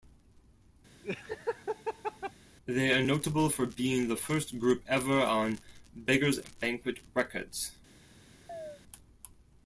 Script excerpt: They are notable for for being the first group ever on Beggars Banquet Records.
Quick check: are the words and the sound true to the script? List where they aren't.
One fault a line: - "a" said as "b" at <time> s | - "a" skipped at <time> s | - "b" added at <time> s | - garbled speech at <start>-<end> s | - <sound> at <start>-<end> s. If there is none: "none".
- laugh at 1.0-2.3 s
- "for" skipped at 3.6 s
- chirp at 8.5-8.8 s